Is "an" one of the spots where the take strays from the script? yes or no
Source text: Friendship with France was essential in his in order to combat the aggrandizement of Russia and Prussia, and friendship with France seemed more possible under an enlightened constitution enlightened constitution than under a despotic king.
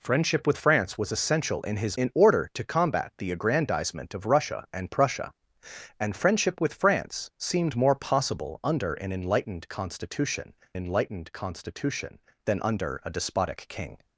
no